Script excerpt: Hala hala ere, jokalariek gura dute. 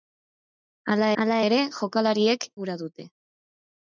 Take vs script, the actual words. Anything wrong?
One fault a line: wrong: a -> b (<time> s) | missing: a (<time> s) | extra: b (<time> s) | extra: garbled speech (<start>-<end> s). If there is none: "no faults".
no faults